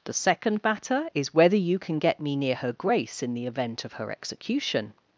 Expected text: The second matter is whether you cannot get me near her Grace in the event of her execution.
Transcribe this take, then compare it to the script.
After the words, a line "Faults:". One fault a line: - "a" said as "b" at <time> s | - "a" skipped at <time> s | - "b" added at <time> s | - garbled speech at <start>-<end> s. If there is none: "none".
The second matter is whether you can get me near her Grace in the event of her execution.
Faults:
- "cannot" said as "can" at 1.8 s